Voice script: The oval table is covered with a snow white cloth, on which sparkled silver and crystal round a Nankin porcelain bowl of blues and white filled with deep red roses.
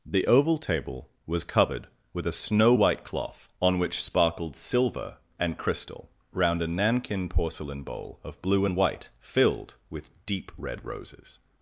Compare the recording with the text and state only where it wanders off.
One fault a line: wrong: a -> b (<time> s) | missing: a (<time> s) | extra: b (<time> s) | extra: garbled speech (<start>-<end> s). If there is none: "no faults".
wrong: is -> was (1.2 s)
wrong: blues -> blue (8.4 s)